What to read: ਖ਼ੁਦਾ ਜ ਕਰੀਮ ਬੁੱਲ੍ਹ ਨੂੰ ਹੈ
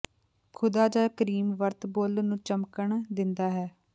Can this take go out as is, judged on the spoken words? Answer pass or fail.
fail